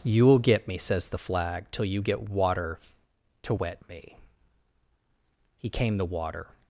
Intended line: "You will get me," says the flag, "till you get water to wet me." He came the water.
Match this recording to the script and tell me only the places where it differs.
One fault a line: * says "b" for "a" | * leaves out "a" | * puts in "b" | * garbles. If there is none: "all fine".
all fine